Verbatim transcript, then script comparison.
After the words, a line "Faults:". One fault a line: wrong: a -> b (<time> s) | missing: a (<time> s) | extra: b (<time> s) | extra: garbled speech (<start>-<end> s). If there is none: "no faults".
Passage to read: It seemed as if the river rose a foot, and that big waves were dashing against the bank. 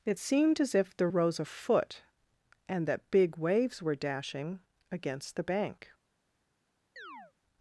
It seemed as if the rose a foot, and that big waves were dashing against the bank.
Faults:
missing: river (1.1 s)